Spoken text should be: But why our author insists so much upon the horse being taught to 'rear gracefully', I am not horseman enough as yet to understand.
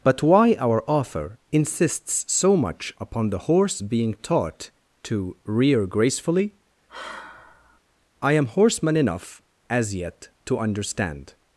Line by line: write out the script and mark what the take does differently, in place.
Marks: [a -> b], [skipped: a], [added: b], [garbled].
But why our author insists so much upon the horse being taught to 'rear gracefully', I am [skipped: not] horseman enough as yet to understand.